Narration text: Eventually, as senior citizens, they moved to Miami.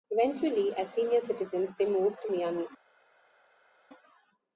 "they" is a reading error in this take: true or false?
false